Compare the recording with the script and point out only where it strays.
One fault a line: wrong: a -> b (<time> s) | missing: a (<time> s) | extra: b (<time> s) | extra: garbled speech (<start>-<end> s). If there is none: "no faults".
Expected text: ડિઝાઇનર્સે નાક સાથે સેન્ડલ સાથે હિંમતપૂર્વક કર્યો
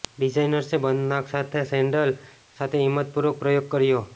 extra: બંધ (0.8 s)
extra: પ્રયોગ (3.4 s)